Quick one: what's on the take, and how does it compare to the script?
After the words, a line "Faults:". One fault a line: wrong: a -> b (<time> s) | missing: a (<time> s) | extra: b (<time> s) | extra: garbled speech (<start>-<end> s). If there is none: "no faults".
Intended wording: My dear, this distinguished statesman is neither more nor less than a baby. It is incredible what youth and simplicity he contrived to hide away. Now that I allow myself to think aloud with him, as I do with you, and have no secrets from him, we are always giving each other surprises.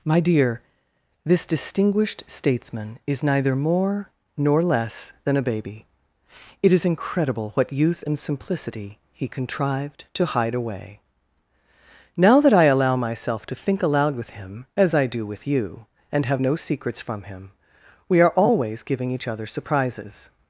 My dear, this distinguished statesman is neither more nor less than a baby. It is incredible what youth and simplicity he contrived to hide away. Now that I allow myself to think aloud with him, as I do with you, and have no secrets from him, we are always giving each other surprises.
Faults:
no faults